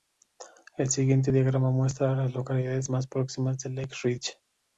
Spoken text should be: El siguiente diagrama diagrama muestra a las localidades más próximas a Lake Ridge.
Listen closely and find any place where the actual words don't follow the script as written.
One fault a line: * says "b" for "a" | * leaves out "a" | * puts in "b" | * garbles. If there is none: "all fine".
* leaves out "diagrama"